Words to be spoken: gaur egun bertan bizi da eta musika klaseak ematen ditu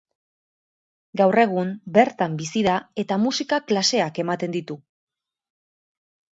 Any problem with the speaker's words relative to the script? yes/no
no